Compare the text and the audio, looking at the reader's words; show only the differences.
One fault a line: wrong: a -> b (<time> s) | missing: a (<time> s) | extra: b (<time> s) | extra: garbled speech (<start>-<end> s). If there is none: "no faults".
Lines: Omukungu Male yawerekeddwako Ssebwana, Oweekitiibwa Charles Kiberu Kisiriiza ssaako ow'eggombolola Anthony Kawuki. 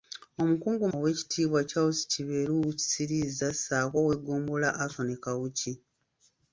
missing: Male yawerekeddwako Ssebwana (0.8 s)